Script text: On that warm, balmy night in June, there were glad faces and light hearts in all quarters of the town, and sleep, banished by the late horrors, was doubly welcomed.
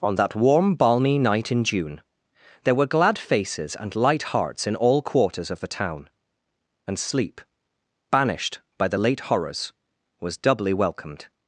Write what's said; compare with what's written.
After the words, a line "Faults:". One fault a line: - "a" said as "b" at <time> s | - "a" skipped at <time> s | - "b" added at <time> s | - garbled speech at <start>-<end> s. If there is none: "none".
On that warm, balmy night in June, there were glad faces and light hearts in all quarters of the town, and sleep, banished by the late horrors, was doubly welcomed.
Faults:
none